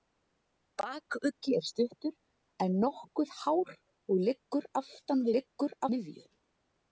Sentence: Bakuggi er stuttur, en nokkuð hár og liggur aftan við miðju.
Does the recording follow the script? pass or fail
fail